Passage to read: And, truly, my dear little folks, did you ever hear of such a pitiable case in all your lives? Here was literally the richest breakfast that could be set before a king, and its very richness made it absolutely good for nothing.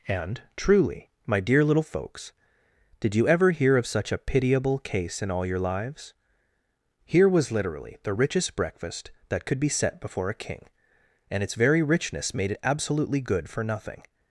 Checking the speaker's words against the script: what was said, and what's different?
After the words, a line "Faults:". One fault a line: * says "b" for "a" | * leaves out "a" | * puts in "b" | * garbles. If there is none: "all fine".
And, truly, my dear little folks, did you ever hear of such a pitiable case in all your lives? Here was literally the richest breakfast that could be set before a king, and its very richness made it absolutely good for nothing.
Faults:
all fine